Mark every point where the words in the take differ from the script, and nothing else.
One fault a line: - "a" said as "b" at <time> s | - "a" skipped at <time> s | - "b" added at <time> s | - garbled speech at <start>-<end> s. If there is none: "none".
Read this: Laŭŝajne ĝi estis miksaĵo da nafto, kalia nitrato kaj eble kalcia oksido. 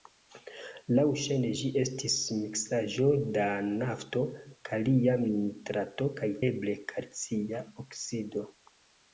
none